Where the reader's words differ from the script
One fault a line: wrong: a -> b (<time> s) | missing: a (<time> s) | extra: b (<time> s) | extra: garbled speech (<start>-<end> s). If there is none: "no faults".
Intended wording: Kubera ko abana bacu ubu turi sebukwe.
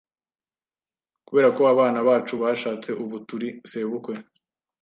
extra: bashatse (2.4 s)